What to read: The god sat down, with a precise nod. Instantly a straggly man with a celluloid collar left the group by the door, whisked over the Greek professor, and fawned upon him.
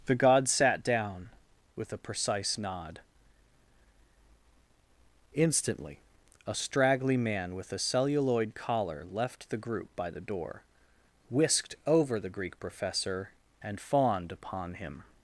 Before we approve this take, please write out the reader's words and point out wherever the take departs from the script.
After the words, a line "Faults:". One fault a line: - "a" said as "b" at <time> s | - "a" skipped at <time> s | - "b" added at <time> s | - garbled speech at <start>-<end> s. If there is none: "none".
The god sat down, with a precise nod. Instantly a straggly man with a celluloid collar left the group by the door, whisked over the Greek professor, and fawned upon him.
Faults:
none